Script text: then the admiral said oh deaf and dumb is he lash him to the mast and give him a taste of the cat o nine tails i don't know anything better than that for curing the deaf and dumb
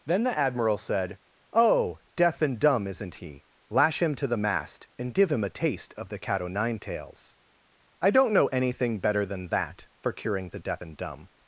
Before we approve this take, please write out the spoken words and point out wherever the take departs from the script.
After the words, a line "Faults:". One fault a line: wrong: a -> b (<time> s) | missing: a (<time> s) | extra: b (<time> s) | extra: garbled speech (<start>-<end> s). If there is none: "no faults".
then the admiral said oh deaf and dumb isn't he lash him to the mast and give him a taste of the cat o nine tails i don't know anything better than that for curing the deaf and dumb
Faults:
wrong: is -> isn't (2.9 s)